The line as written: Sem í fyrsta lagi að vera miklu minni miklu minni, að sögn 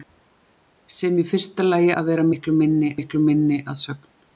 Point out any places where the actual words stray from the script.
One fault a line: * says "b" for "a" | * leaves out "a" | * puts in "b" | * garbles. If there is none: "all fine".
all fine